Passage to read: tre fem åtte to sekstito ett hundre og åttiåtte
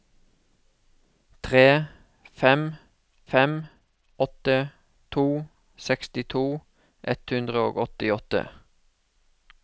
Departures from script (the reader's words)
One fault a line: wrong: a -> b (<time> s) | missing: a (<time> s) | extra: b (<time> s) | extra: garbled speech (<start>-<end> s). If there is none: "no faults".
extra: fem (3.3 s)